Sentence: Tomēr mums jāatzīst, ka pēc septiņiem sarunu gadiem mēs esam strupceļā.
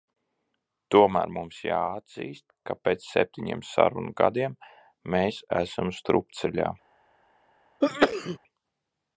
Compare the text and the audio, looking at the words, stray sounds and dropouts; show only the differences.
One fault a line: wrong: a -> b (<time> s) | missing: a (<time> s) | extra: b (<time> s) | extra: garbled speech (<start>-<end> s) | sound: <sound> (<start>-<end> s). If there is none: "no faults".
sound: sneeze (7.8-8.4 s)